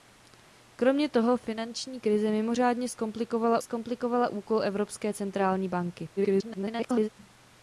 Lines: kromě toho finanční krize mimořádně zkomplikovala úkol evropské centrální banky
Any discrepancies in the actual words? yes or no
yes